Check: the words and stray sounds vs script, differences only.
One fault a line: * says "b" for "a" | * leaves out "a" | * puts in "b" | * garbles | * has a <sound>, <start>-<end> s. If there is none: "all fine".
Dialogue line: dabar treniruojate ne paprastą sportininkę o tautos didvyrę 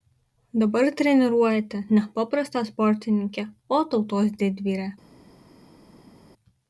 all fine